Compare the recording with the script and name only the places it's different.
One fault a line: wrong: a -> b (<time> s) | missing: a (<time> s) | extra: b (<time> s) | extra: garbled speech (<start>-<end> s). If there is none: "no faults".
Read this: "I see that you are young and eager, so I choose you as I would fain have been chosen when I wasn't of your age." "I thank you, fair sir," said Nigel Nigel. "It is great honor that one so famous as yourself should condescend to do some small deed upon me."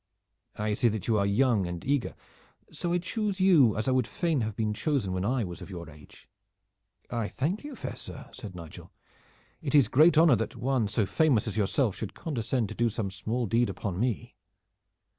wrong: wasn't -> was (5.4 s)
missing: Nigel (8.9 s)